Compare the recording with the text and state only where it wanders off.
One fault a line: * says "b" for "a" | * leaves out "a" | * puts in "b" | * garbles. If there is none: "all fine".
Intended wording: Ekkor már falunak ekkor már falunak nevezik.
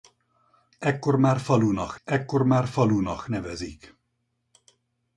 all fine